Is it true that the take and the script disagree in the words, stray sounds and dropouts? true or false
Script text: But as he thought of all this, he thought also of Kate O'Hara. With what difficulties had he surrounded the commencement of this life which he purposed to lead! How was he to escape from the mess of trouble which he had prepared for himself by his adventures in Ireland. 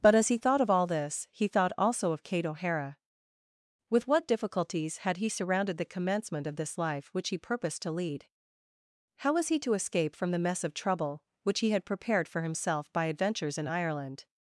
true